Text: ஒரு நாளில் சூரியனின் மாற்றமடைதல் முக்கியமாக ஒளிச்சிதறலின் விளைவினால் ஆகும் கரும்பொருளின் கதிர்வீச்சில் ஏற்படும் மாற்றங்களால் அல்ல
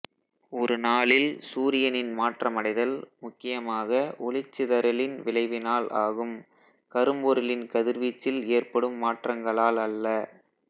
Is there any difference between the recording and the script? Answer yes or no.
no